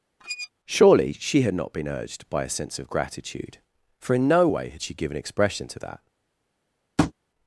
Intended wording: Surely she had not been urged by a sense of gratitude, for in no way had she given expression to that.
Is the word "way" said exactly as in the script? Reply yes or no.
yes